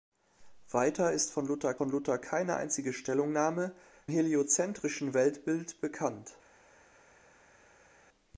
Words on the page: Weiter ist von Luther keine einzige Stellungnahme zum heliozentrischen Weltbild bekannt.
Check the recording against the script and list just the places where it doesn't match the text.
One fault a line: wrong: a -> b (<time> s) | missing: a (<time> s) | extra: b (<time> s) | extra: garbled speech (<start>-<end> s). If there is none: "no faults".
extra: von Luther (1.7 s)
missing: zum (3.7 s)